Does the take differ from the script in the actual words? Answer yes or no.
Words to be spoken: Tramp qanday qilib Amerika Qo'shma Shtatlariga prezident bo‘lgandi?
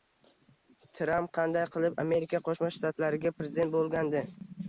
no